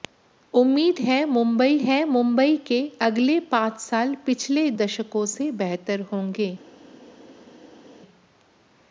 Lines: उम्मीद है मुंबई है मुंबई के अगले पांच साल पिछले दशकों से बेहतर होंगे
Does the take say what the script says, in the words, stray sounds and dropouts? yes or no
yes